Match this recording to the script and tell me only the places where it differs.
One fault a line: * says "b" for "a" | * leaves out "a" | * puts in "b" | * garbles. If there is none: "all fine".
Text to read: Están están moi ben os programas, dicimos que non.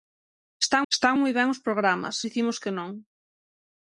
all fine